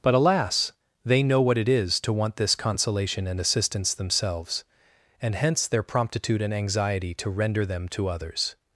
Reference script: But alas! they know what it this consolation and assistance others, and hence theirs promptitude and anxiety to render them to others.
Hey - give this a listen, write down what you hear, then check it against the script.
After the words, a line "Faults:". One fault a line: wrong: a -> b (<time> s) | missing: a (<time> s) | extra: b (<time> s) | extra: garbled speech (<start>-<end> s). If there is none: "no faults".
But alas! they know what it is to want this consolation and assistance themselves, and hence their promptitude and anxiety to render them to others.
Faults:
extra: is to want (1.7 s)
wrong: others -> themselves (3.9 s)
wrong: theirs -> their (5.7 s)